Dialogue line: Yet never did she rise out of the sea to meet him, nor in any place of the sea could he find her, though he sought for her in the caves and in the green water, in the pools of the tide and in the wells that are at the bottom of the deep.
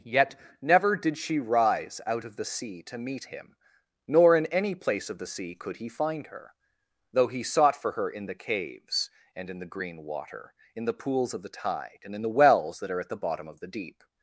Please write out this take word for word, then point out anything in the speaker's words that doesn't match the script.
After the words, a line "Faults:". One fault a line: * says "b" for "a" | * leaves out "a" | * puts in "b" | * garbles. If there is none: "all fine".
Yet never did she rise out of the sea to meet him, nor in any place of the sea could he find her, though he sought for her in the caves and in the green water, in the pools of the tide and in the wells that are at the bottom of the deep.
Faults:
all fine